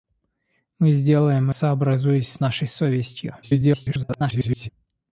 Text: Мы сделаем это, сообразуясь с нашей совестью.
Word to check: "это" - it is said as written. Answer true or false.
false